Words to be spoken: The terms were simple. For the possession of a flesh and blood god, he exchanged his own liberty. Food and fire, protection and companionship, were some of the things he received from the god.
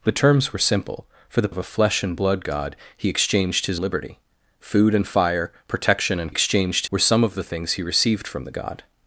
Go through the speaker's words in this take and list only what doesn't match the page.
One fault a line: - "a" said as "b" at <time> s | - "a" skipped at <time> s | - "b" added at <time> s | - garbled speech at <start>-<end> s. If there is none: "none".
- "possession" skipped at 1.5 s
- "own" skipped at 3.8 s
- "companionship" said as "exchanged" at 6.3 s